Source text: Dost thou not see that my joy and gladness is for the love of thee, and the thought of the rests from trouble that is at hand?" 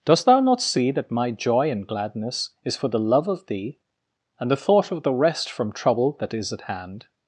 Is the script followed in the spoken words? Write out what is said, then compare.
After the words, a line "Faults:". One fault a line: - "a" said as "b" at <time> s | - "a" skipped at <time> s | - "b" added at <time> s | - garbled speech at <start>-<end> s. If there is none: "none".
Dost thou not see that my joy and gladness is for the love of thee, and the thought of the rest from trouble that is at hand?"
Faults:
- "rests" said as "rest" at 5.1 s